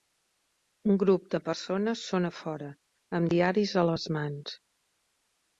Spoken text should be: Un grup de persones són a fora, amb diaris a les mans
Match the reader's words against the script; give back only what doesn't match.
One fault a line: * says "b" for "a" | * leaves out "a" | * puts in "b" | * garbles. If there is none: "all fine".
all fine